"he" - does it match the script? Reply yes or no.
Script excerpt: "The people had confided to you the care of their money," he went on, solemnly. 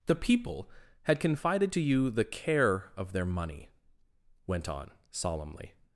no